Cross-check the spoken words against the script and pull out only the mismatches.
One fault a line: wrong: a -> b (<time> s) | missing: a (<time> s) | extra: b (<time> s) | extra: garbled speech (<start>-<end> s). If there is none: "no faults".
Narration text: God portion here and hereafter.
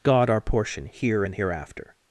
extra: our (0.3 s)